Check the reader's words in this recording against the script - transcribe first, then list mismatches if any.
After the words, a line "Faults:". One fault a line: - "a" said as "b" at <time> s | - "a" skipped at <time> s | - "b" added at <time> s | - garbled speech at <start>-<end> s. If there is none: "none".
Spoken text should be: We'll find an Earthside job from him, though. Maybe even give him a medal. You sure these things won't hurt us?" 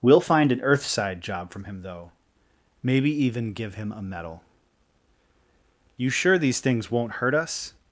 We'll find an Earthside job from him, though. Maybe even give him a medal. You sure these things won't hurt us?"
Faults:
none